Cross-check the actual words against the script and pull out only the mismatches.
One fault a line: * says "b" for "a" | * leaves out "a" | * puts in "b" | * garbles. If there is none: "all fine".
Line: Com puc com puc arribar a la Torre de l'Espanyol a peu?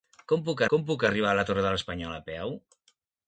all fine